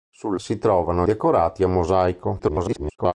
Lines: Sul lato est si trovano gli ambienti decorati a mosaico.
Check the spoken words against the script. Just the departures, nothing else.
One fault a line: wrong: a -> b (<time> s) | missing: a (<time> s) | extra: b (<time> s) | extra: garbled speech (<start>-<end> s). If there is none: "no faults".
missing: lato est (0.3 s)
missing: gli ambienti (1.1 s)
extra: garbled speech (2.4-3.1 s)